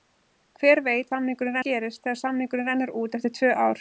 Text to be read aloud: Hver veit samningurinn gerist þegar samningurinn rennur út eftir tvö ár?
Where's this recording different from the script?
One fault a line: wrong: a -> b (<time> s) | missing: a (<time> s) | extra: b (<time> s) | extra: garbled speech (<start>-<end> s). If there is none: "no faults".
no faults